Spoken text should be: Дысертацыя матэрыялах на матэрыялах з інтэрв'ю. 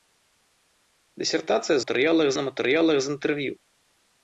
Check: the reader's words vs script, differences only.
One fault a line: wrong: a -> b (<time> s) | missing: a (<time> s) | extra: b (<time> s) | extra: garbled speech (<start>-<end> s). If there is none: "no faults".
no faults